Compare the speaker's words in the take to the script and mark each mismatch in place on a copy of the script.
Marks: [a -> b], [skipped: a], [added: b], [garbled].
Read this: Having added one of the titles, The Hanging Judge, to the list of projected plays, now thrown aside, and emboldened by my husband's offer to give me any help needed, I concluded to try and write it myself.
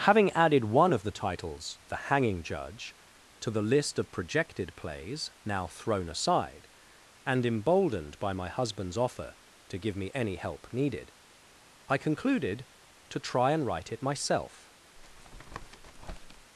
Having added one of the titles, The Hanging Judge, to the list of projected plays, now thrown aside, and emboldened by my husband's offer to give me any help needed, I concluded to try and write it myself.